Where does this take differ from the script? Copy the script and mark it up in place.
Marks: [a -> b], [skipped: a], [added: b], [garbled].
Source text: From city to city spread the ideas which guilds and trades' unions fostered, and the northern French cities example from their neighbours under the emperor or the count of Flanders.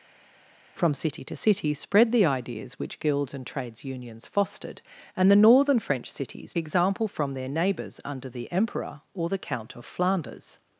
From city to city spread the ideas which guilds and trades' unions fostered, and the northern French cities example from their neighbours under the emperor or the count of Flanders.